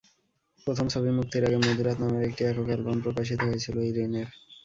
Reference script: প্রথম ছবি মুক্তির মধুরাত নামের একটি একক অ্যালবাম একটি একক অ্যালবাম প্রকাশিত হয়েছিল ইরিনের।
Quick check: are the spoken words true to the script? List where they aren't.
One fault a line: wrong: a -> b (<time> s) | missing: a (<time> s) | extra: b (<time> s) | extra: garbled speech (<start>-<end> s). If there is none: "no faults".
extra: আগে (1.5 s)
missing: একটি একক অ্যালবাম (3.0 s)